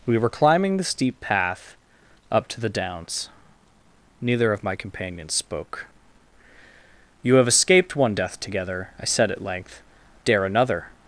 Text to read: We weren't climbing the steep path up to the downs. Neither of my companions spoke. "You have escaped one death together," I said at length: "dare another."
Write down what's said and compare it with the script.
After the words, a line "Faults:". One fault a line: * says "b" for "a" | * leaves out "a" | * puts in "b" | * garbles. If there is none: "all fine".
We were climbing the steep path up to the downs. Neither of my companions spoke. "You have escaped one death together," I said at length: "dare another."
Faults:
* says "were" for "weren't"